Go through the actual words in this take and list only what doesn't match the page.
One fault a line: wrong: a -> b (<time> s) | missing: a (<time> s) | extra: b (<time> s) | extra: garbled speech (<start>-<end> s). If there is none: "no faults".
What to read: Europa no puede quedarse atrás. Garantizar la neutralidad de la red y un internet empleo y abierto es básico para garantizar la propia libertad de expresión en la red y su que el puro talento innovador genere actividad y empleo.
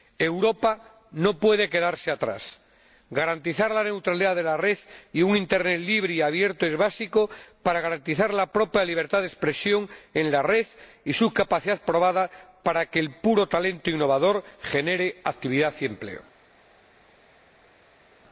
wrong: empleo -> libre (5.8 s)
extra: capacidad probada para (11.3 s)